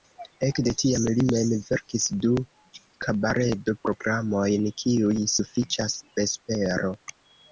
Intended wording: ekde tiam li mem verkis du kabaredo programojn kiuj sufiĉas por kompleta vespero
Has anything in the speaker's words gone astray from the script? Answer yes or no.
yes